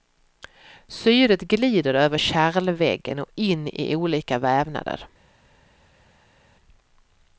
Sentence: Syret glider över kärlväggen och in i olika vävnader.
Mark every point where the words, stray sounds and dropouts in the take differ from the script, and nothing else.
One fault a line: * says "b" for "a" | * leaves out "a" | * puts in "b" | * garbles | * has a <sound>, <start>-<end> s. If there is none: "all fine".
all fine